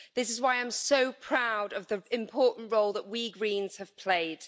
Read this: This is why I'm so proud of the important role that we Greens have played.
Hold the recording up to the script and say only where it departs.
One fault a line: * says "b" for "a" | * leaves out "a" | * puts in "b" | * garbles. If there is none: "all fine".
all fine